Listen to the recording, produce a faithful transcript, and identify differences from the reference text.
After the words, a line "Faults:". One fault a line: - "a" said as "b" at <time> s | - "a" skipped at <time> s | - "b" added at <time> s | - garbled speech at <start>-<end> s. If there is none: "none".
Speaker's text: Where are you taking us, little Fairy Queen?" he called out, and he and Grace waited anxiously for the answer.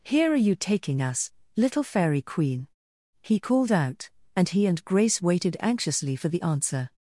Here are you taking us, little Fairy Queen?" he called out, and he and Grace waited anxiously for the answer.
Faults:
- "Where" said as "Here" at 0.0 s